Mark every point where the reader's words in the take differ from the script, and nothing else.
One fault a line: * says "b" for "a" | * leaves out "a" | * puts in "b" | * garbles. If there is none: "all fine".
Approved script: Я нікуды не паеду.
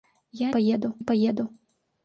* says "паеду" for "нікуды"